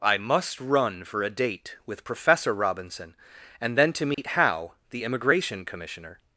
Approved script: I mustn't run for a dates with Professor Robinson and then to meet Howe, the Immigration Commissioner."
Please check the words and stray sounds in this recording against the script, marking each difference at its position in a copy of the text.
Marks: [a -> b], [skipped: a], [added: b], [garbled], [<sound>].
I [mustn't -> must] run for a [dates -> date] with Professor Robinson and then to meet [dropout] Howe, the Immigration Commissioner."